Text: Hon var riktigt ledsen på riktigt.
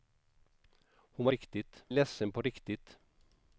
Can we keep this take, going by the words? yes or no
yes